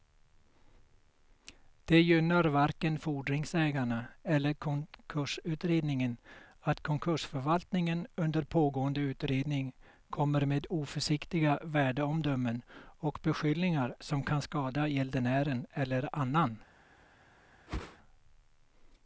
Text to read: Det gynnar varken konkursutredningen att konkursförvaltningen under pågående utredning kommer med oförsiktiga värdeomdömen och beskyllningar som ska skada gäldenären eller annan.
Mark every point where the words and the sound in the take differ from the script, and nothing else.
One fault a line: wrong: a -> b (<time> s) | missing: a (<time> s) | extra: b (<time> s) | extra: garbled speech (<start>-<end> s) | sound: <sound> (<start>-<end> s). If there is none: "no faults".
extra: fordringsägarna eller (3.0 s)
wrong: ska -> kan (14.2 s)
sound: whoosh (17.7-18.0 s)